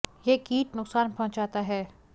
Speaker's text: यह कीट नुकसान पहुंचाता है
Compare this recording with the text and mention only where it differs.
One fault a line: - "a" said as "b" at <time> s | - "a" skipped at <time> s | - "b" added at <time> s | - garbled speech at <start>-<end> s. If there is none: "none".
none